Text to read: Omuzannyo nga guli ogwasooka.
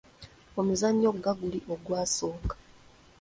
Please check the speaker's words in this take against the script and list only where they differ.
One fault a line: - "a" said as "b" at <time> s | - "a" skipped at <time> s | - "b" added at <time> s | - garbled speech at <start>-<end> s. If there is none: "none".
none